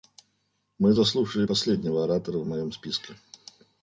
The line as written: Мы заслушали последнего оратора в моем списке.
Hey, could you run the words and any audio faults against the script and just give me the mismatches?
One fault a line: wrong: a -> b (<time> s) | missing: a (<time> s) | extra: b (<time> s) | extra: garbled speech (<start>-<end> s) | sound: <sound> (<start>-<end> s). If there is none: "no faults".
no faults